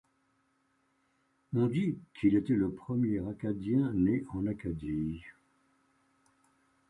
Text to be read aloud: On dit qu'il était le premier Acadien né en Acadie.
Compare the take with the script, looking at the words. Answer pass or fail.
pass